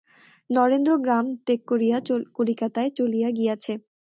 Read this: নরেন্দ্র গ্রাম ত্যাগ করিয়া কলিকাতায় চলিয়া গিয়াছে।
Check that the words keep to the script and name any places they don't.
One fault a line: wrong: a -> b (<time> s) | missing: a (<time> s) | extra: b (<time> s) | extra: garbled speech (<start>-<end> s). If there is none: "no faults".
no faults